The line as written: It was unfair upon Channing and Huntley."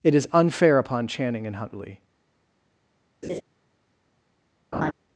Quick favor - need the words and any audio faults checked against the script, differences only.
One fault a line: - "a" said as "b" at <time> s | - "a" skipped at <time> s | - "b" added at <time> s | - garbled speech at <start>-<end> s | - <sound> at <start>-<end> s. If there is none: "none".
- "was" said as "is" at 0.1 s
- laugh at 3.2-3.4 s
- laugh at 4.7-4.9 s